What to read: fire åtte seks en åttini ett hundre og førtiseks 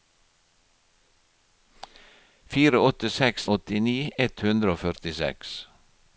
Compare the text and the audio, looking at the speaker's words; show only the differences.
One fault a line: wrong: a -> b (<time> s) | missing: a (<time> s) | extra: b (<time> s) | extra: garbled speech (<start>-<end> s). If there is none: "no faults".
missing: en (3.5 s)